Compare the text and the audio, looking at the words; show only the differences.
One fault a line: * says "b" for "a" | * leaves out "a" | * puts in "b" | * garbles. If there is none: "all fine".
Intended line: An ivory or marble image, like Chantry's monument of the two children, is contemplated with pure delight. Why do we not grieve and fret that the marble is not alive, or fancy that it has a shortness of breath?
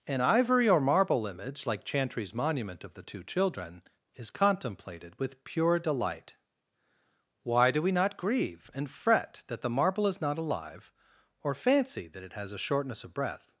all fine